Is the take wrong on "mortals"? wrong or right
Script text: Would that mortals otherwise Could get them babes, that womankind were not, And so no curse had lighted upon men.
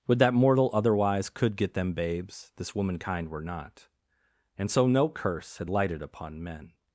wrong